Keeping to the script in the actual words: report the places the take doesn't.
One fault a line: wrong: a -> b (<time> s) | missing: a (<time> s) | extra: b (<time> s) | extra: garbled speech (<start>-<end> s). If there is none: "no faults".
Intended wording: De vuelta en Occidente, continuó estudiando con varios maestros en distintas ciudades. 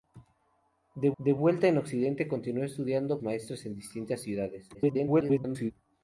extra: de (1.2 s)
missing: con varios (3.2 s)
extra: garbled speech (4.7-5.7 s)